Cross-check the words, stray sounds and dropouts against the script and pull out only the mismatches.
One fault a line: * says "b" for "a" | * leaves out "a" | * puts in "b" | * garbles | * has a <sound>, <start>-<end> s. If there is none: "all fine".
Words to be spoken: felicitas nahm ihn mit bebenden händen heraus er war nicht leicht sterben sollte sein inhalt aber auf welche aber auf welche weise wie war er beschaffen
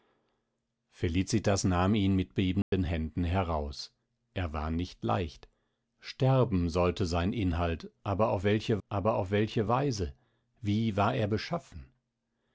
* has a dropout, 2.6-2.7 s